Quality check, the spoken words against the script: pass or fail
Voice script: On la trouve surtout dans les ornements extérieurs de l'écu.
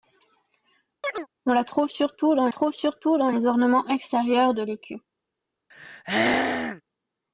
fail